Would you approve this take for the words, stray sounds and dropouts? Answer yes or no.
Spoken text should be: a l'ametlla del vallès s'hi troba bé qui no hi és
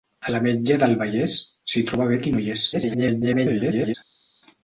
no